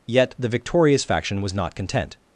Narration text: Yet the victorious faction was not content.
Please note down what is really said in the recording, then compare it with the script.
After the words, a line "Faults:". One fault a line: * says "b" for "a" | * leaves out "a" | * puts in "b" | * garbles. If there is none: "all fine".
Yet the victorious faction was not content.
Faults:
all fine